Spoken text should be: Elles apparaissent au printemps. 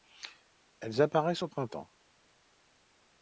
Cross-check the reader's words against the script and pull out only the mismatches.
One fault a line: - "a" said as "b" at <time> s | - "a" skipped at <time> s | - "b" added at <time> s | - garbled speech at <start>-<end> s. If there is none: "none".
none